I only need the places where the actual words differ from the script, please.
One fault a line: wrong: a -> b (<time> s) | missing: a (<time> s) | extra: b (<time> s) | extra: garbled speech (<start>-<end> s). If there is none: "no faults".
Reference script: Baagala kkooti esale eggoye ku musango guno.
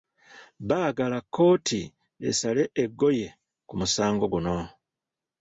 no faults